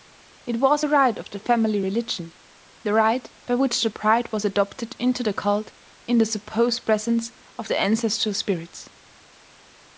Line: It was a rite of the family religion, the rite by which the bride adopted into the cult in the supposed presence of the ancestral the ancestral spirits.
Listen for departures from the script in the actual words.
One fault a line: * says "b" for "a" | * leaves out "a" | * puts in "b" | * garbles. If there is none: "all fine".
* puts in "was"
* leaves out "the ancestral"